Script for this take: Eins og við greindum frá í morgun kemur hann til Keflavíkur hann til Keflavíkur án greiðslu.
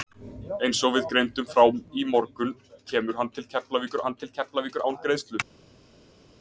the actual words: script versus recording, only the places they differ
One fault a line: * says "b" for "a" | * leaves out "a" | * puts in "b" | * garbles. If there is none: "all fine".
all fine